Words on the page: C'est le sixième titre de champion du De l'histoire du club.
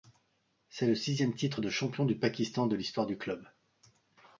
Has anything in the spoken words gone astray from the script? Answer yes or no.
yes